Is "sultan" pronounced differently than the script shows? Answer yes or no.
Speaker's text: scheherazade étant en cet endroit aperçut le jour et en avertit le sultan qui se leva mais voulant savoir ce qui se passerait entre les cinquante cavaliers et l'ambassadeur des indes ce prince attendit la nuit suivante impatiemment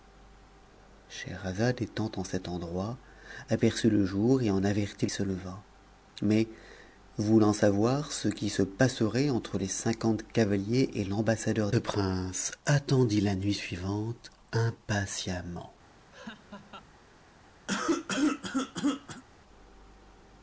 yes